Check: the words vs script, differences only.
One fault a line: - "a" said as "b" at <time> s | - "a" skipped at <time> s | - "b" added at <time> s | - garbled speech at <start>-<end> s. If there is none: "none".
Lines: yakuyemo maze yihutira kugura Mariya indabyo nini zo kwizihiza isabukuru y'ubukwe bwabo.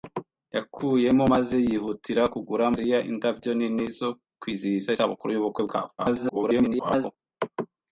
- garbled speech at 6.0-7.2 s